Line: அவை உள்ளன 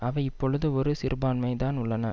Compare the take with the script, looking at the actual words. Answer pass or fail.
fail